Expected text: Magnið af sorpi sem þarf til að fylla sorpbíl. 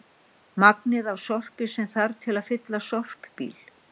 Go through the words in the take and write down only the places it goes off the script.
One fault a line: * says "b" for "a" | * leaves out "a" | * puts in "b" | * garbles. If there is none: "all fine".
all fine